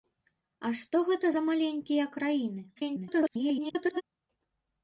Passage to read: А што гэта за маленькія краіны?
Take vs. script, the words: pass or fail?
fail